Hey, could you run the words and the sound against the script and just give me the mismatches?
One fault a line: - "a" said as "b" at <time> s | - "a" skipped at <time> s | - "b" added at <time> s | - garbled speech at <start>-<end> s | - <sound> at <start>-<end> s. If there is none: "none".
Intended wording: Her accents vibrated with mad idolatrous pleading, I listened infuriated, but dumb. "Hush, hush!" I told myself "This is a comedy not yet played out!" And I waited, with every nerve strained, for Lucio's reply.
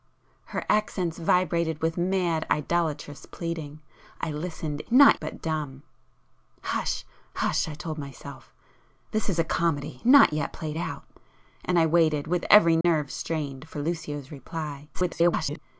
- "infuriated" said as "not" at 4.9 s
- dropout at 12.8-12.8 s
- garbled speech at 14.9-15.6 s